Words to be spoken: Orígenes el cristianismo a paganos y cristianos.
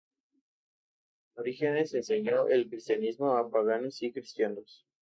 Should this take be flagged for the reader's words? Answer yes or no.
yes